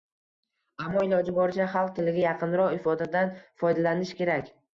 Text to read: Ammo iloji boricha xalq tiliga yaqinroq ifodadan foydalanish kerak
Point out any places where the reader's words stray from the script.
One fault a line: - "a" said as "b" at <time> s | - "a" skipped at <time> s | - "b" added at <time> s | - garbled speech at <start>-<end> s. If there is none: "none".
none